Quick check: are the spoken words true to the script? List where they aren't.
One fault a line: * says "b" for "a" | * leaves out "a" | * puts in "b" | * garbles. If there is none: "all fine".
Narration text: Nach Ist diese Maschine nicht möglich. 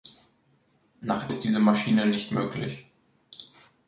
all fine